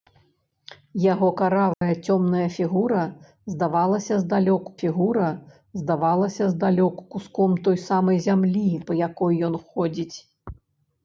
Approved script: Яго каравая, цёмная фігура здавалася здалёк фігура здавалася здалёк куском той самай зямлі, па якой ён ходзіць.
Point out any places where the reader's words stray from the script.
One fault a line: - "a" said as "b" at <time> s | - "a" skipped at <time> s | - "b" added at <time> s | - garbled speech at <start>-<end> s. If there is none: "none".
none